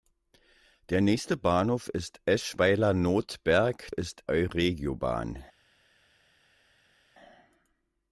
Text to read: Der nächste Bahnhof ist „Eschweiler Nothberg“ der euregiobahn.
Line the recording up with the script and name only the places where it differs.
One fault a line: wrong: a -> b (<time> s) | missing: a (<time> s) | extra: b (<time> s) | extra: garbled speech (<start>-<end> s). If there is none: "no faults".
wrong: der -> ist (3.9 s)